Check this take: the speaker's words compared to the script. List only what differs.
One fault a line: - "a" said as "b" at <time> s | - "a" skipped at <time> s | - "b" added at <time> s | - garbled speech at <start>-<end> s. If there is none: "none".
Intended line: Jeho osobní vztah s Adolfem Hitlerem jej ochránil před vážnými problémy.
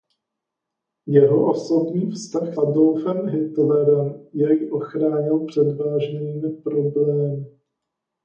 - "s" skipped at 2.6 s